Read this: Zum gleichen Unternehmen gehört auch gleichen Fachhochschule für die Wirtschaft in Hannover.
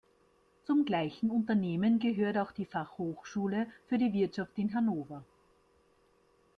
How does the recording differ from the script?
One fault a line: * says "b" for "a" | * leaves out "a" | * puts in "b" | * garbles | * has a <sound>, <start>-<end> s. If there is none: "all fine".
* says "die" for "gleichen"